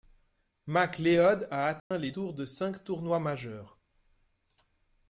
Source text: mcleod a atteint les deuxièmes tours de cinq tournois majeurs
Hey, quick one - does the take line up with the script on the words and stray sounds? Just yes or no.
no